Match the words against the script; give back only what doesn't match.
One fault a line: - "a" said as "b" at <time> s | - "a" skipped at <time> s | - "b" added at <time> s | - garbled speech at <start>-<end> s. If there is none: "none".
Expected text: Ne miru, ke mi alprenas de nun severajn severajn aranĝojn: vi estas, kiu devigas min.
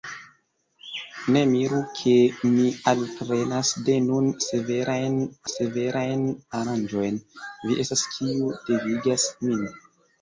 none